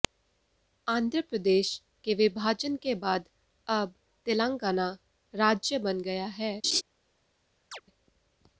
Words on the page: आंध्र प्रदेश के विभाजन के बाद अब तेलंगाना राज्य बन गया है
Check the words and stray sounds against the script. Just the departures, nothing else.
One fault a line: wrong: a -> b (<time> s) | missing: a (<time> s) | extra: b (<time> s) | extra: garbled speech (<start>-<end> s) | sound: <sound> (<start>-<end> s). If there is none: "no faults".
sound: laugh (6.6-6.8 s)
sound: chirp (7.7-7.8 s)